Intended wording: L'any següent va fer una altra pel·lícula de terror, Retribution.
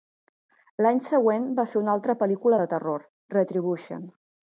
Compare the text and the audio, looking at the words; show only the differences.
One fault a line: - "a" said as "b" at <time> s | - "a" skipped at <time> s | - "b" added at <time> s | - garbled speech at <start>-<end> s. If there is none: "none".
none